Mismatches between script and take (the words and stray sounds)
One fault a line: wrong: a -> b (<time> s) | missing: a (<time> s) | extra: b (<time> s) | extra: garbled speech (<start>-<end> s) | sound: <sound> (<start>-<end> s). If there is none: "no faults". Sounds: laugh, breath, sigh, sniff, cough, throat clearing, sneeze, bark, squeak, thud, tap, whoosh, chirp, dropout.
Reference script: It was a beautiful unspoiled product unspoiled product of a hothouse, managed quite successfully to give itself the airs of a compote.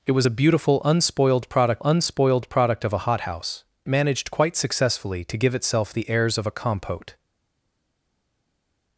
no faults